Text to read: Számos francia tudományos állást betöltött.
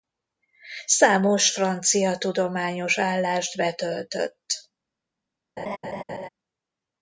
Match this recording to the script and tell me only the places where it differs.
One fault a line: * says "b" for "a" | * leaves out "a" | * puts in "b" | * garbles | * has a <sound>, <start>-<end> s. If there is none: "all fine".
* has a laugh, 5.6-6.3 s